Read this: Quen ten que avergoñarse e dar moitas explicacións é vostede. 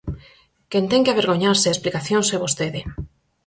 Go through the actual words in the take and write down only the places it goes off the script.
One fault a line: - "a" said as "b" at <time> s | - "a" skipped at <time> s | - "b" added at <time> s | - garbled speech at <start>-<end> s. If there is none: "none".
- "dar moitas" skipped at 1.8 s